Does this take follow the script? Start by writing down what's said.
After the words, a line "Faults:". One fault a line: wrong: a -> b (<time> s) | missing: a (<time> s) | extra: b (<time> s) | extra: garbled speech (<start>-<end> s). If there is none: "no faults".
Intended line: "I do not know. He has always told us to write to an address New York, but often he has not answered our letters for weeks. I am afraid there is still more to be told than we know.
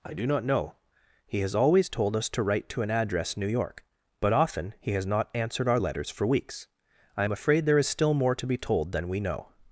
"I do not know. He has always told us to write to an address New York, but often he has not answered our letters for weeks. I am afraid there is still more to be told than we know.
Faults:
no faults